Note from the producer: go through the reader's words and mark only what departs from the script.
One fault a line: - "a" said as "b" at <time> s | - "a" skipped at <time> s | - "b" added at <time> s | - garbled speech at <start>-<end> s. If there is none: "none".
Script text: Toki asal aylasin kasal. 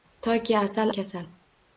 - "aylasin" skipped at 0.9 s